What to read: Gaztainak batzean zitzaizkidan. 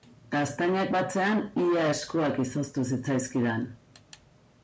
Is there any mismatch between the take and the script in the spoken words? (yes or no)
yes